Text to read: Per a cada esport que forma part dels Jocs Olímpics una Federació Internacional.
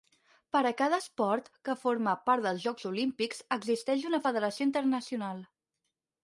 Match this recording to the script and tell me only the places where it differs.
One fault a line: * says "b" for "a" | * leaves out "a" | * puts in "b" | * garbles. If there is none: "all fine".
* puts in "existeix"